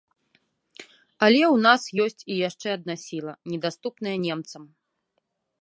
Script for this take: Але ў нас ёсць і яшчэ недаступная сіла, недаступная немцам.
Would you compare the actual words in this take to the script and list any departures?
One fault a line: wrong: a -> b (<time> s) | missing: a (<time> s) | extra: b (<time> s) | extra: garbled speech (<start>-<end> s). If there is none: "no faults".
wrong: недаступная -> адна (2.8 s)